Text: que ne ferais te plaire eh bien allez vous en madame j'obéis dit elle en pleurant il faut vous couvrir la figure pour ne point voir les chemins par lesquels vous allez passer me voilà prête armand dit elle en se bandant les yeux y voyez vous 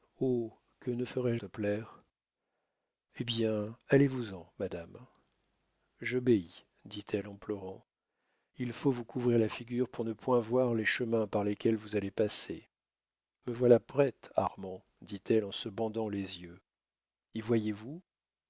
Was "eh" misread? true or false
false